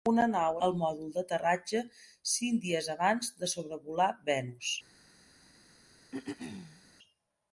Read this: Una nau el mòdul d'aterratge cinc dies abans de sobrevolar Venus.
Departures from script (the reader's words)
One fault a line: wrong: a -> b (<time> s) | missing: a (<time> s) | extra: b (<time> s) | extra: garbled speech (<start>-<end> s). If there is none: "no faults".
no faults